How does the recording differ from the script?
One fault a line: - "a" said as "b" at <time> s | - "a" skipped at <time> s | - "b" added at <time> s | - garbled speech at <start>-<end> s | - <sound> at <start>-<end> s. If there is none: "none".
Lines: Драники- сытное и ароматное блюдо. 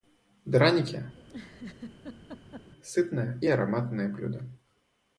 - laugh at 1.1-2.7 s